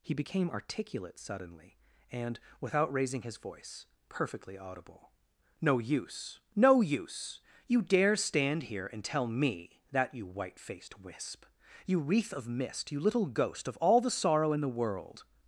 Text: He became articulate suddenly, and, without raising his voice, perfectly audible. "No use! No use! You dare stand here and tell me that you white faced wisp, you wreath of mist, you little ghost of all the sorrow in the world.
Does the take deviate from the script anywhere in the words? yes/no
no